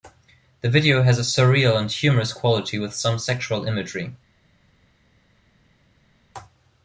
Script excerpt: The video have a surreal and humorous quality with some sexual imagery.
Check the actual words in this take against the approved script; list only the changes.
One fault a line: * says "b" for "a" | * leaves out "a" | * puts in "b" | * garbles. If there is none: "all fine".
* says "has" for "have"